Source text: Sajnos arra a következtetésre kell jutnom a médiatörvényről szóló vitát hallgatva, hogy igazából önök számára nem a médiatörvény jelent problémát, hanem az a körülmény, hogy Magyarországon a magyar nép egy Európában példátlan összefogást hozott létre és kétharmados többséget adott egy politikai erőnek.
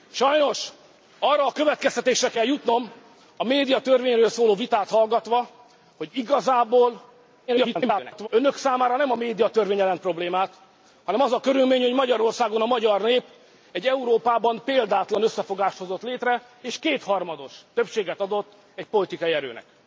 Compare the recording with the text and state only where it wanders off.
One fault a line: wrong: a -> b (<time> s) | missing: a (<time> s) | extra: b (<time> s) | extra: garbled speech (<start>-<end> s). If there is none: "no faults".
extra: garbled speech (7.5-8.3 s)